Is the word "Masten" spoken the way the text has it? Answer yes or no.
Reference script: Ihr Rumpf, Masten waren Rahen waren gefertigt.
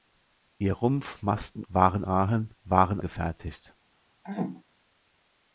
yes